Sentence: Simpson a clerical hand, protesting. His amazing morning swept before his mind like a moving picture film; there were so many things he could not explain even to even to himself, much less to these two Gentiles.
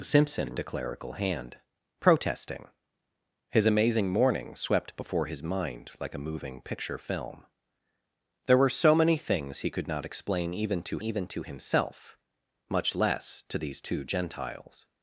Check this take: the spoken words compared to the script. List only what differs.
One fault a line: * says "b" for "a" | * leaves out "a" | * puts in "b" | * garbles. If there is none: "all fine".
all fine